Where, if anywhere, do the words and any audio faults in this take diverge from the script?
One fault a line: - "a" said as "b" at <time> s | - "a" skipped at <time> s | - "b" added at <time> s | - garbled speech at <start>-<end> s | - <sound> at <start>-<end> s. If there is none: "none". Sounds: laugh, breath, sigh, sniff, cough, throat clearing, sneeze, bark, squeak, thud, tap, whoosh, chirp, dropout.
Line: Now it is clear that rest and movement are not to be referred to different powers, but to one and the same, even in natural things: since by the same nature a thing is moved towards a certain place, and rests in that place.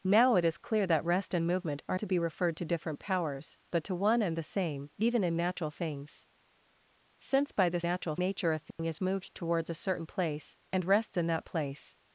- "not" skipped at 2.0 s
- "same" said as "natural" at 7.8 s
- dropout at 8.7-8.8 s